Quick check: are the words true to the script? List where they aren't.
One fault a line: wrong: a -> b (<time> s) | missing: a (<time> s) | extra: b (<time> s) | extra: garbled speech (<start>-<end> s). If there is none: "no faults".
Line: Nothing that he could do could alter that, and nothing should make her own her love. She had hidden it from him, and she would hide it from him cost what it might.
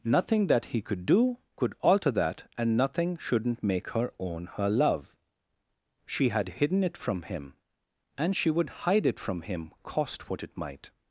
wrong: should -> shouldn't (3.2 s)